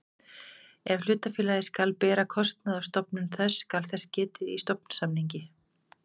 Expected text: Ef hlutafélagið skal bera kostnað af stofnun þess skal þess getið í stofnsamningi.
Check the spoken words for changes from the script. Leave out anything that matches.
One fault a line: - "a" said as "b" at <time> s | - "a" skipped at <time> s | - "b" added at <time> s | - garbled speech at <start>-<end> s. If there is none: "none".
none